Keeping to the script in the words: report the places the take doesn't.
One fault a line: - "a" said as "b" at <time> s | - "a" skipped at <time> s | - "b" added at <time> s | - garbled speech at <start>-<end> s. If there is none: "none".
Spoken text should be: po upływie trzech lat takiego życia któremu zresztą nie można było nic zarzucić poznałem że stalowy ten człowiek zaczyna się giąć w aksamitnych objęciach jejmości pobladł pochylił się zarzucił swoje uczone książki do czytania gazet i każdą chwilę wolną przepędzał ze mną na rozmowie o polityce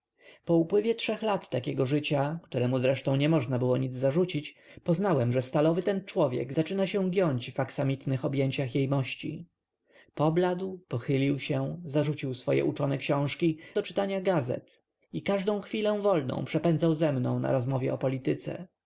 none